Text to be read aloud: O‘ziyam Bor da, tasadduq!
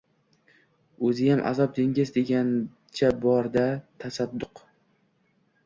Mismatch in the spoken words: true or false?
true